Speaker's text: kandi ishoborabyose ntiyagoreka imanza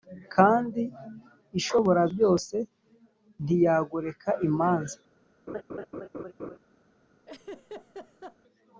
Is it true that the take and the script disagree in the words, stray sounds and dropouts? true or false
true